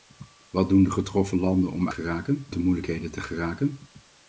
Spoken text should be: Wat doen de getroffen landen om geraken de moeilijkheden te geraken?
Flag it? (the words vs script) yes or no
no